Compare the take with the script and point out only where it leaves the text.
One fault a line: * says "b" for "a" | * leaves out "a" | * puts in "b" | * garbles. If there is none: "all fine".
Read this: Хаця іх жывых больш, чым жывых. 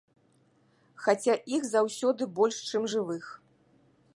* says "заўсёды" for "жывых"